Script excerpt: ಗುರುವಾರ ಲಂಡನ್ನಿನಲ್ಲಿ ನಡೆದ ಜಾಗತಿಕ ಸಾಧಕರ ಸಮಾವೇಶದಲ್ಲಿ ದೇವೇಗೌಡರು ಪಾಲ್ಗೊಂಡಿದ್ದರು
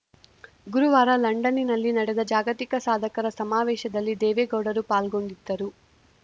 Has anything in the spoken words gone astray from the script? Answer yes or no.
no